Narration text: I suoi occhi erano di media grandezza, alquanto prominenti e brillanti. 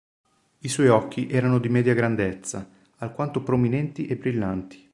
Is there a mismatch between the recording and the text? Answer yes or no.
no